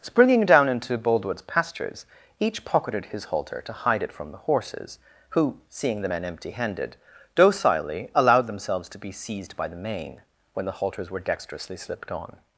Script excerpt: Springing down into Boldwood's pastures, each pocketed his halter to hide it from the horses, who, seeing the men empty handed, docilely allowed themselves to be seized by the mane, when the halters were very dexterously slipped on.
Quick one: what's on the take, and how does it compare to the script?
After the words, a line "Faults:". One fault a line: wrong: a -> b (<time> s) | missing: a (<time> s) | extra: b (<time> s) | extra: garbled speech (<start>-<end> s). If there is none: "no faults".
Springing down into Boldwood's pastures, each pocketed his halter to hide it from the horses, who, seeing the men empty handed, docilely allowed themselves to be seized by the mane, when the halters were dexterously slipped on.
Faults:
missing: very (11.2 s)